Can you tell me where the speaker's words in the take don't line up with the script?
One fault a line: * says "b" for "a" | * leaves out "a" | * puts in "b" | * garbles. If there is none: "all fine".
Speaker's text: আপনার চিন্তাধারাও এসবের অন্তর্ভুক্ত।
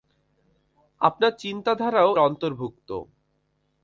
* leaves out "এসবের"